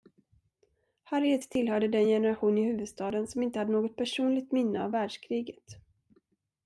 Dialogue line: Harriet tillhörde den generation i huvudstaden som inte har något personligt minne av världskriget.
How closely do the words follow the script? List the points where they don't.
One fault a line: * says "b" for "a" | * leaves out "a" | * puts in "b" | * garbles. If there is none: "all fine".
* says "hade" for "har"